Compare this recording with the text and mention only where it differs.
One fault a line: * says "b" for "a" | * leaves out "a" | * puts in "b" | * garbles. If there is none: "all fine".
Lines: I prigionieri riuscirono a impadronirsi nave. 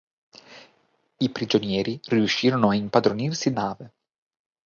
all fine